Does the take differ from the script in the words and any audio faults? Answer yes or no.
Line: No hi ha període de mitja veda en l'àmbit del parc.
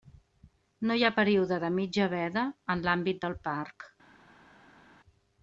no